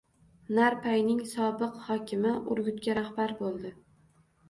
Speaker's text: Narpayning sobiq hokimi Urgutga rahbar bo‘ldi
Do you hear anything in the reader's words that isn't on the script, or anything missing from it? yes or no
no